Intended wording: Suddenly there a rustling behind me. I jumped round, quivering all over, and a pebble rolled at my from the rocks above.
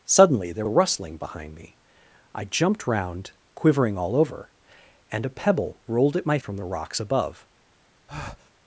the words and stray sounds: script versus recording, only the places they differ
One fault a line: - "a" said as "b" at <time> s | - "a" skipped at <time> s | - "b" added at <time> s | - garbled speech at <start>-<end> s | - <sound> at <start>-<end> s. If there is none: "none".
- breath at 8.1-8.5 s